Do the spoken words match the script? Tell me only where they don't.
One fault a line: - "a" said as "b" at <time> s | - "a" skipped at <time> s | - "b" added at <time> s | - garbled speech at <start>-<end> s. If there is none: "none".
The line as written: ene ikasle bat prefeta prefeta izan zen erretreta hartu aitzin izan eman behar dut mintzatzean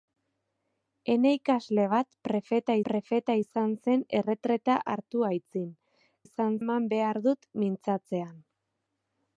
none